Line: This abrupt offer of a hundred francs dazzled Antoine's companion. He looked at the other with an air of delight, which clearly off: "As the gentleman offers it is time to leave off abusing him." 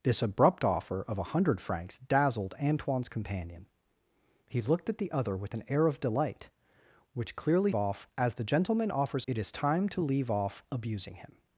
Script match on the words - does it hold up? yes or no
yes